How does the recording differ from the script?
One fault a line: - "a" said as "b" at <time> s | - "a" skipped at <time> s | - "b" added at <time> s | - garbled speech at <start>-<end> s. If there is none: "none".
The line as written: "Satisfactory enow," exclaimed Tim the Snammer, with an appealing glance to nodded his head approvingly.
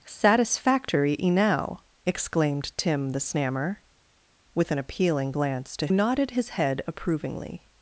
none